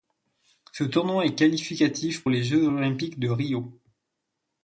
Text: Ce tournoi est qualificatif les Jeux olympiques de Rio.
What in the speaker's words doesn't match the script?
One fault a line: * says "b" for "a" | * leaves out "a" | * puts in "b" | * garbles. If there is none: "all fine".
all fine